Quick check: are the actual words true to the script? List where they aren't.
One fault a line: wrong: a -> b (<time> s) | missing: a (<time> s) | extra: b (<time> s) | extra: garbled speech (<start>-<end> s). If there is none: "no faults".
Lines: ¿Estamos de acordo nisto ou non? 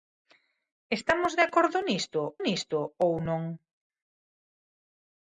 extra: nisto (2.5 s)